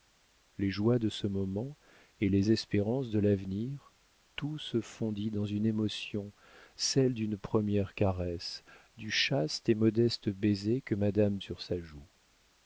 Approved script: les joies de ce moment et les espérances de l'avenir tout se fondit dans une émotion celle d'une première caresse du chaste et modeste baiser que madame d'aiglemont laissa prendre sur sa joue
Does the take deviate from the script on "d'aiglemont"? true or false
true